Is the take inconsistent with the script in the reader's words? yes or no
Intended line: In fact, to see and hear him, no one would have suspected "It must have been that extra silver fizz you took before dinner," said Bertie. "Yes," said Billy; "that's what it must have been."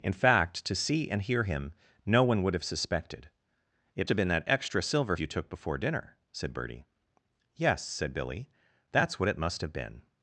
yes